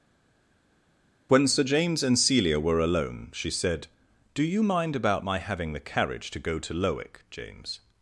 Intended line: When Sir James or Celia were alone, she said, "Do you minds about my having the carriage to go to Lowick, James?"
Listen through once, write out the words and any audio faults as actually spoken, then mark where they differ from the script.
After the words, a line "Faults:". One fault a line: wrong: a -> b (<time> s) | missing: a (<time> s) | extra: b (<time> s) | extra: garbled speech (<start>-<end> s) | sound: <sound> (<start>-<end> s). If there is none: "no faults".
When Sir James and Celia were alone, she said, "Do you mind about my having the carriage to go to Lowick, James?"
Faults:
wrong: or -> and (2.0 s)
wrong: minds -> mind (4.6 s)